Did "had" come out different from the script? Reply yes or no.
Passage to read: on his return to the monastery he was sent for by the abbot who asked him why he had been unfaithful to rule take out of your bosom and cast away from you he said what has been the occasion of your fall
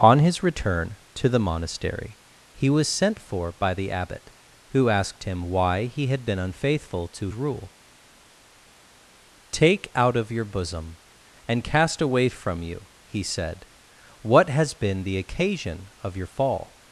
no